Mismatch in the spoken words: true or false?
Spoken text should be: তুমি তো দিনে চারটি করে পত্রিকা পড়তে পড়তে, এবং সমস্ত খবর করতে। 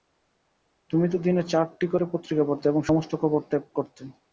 true